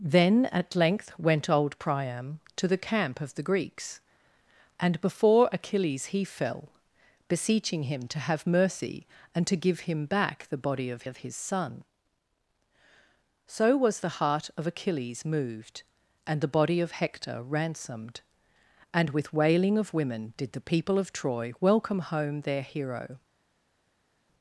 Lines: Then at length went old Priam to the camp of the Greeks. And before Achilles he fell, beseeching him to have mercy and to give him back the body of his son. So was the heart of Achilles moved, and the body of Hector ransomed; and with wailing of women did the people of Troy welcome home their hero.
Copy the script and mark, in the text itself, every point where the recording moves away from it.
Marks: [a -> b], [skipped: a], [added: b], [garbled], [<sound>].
Then at length went old Priam to the camp of the Greeks. And before Achilles he fell, beseeching him to have mercy and to give him back the body of [added: of] his son. So was the heart of Achilles moved, and the body of Hector ransomed; and with wailing of women did the people of Troy welcome home their hero.